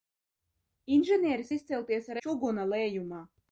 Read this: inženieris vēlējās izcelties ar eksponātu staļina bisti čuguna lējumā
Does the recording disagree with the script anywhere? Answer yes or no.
yes